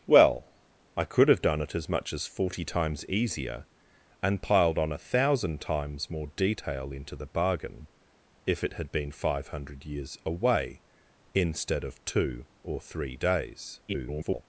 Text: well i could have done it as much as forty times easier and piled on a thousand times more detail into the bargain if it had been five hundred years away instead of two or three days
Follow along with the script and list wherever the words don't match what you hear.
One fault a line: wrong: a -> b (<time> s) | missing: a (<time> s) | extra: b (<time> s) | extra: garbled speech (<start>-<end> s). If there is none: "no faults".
extra: garbled speech (13.9-14.4 s)